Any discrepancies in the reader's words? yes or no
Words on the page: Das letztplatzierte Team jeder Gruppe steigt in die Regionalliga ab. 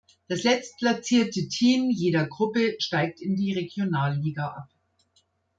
no